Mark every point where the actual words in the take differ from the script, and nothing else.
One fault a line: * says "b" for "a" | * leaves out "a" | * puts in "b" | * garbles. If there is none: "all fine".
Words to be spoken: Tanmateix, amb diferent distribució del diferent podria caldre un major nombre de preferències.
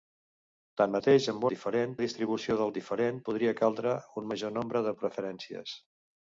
all fine